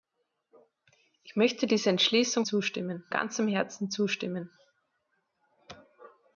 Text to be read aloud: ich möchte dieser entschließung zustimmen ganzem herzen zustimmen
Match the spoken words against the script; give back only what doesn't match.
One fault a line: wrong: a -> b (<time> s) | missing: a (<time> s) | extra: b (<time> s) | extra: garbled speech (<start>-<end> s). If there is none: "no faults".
no faults